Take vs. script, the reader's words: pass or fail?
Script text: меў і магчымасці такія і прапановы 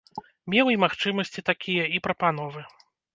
pass